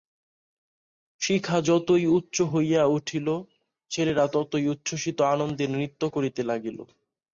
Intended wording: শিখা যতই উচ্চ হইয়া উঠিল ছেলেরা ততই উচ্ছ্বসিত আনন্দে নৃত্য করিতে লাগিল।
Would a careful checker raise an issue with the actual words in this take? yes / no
no